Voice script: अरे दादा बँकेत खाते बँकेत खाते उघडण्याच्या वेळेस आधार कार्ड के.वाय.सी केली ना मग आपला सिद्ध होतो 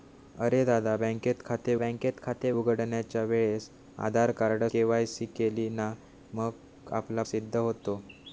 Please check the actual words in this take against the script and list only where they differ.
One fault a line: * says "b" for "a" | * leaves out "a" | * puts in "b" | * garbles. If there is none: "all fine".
all fine